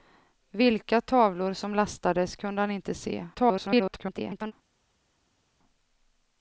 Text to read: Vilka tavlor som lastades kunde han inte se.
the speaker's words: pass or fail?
fail